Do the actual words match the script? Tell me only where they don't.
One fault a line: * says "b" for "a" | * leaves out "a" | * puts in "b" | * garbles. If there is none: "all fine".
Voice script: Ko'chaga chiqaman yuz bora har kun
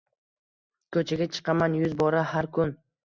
all fine